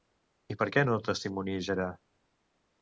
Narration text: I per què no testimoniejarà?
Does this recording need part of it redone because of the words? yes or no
no